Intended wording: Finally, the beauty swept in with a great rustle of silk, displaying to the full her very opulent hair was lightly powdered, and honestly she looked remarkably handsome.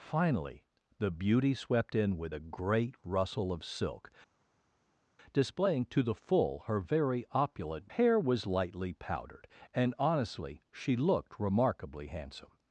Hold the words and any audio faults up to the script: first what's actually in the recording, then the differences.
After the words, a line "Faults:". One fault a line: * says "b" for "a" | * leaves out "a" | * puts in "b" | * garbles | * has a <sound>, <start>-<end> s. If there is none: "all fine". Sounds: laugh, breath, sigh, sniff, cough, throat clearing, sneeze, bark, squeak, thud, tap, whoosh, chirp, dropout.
Finally, the beauty swept in with a great rustle of silk, displaying to the full her very opulent hair was lightly powdered, and honestly she looked remarkably handsome.
Faults:
all fine